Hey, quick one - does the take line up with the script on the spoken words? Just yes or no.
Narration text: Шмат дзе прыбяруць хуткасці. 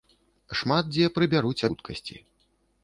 yes